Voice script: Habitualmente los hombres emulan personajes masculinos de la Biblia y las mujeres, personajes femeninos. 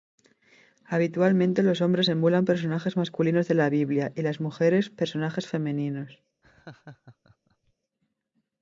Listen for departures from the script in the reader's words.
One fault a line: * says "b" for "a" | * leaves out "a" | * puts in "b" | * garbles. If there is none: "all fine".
all fine